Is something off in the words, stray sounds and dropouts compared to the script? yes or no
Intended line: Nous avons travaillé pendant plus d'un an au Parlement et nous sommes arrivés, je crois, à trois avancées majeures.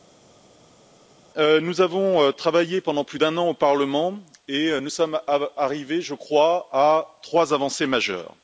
no